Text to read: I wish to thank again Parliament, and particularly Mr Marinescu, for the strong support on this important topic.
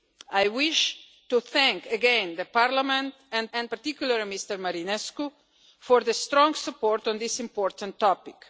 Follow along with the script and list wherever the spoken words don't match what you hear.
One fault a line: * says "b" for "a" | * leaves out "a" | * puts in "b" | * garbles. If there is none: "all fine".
* puts in "and"